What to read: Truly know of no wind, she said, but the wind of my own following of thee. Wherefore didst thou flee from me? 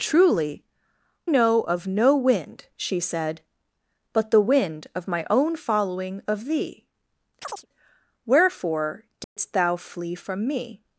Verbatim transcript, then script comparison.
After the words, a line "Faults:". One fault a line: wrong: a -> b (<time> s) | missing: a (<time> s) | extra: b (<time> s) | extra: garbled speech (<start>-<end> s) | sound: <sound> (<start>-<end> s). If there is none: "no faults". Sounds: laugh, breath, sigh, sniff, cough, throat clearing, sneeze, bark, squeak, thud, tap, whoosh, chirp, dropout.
Truly know of no wind, she said, but the wind of my own following of thee. Wherefore didst thou flee from me?
Faults:
sound: chirp (7.4-7.7 s)
sound: dropout (9.2-9.4 s)